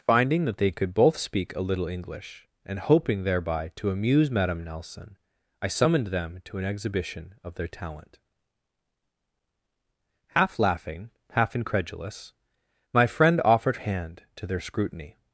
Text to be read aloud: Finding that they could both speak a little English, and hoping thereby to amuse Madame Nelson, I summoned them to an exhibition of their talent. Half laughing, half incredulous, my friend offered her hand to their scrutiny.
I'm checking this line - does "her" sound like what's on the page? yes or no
no